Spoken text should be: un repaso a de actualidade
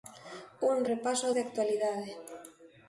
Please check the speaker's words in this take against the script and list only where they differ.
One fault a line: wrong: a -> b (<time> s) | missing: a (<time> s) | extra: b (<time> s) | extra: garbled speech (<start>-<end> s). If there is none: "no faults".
no faults